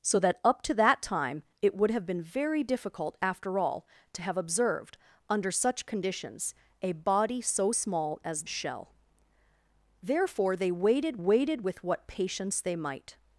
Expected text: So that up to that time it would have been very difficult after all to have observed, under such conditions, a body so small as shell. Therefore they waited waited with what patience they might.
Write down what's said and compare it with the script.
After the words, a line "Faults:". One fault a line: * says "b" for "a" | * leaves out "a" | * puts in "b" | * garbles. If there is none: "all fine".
So that up to that time it would have been very difficult after all to have observed, under such conditions, a body so small as shell. Therefore they waited waited with what patience they might.
Faults:
all fine